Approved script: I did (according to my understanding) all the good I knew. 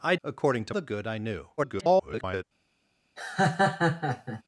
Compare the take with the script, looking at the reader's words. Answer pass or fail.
fail